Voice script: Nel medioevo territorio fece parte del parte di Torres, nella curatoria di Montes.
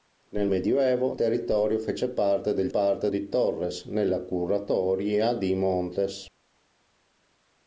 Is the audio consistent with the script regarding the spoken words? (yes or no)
yes